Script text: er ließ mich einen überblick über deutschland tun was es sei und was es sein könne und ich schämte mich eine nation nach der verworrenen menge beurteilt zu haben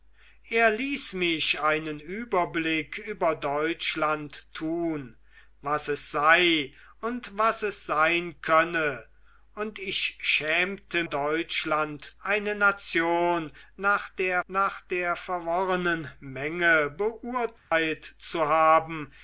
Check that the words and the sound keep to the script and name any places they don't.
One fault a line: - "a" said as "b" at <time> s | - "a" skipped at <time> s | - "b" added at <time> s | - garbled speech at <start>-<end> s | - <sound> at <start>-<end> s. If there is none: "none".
- "mich" said as "deutschland" at 11.0 s
- "nach der" added at 14.5 s
- dropout at 17.6-17.7 s